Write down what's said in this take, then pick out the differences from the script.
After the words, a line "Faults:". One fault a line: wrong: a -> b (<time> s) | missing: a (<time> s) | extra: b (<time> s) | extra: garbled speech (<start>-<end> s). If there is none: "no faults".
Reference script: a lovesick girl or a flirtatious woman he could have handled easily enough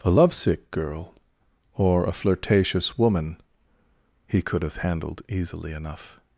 a lovesick girl or a flirtatious woman he could have handled easily enough
Faults:
no faults